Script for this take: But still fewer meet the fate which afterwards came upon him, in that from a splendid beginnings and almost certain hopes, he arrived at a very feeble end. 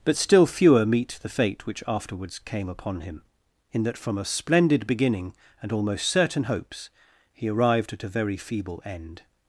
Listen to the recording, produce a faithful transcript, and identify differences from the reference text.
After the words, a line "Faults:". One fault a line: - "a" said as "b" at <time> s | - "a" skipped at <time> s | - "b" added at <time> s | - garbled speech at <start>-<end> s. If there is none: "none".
But still fewer meet the fate which afterwards came upon him, in that from a splendid beginning and almost certain hopes, he arrived at a very feeble end.
Faults:
- "beginnings" said as "beginning" at 4.9 s